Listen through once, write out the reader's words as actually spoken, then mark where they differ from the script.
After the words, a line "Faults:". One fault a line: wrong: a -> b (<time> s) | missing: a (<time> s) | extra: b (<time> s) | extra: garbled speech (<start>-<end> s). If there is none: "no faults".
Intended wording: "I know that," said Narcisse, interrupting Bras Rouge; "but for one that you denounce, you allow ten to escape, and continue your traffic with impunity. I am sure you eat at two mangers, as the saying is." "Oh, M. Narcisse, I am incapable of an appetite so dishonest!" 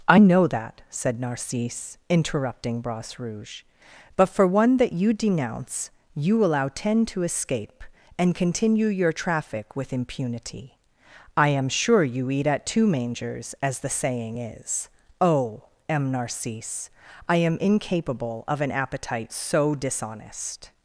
"I know that," said Narcisse, interrupting Bras Rouge; "but for one that you denounce, you allow ten to escape, and continue your traffic with impunity. I am sure you eat at two mangers, as the saying is." "Oh, M. Narcisse, I am incapable of an appetite so dishonest!"
Faults:
no faults